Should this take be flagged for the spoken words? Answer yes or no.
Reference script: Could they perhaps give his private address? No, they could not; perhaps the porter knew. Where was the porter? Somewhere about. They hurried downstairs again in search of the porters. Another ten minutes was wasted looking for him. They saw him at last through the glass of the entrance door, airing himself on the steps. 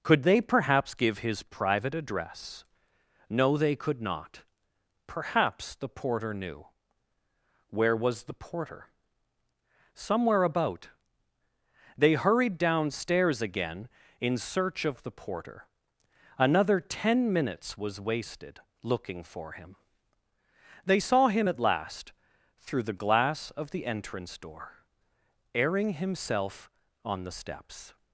yes